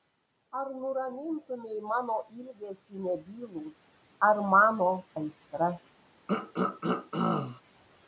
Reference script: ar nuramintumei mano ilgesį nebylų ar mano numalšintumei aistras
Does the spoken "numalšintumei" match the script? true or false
false